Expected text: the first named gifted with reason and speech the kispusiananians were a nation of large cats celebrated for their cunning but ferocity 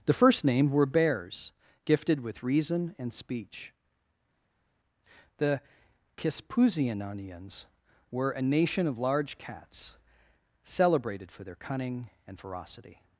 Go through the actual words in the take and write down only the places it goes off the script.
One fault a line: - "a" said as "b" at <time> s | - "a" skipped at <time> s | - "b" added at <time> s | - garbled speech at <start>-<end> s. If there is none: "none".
- "were bears" added at 0.7 s
- "but" said as "and" at 12.3 s